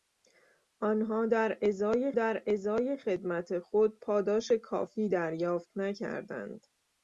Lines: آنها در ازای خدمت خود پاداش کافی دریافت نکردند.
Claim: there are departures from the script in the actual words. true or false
true